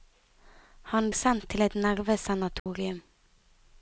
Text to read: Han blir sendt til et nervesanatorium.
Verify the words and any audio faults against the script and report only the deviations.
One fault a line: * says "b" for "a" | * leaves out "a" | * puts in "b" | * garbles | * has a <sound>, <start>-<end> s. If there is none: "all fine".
* leaves out "blir"
* has a dropout, 2.6-2.7 s